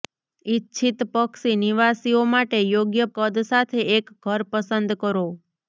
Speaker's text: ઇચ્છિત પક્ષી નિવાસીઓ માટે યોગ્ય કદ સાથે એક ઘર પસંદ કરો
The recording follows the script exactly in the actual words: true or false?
true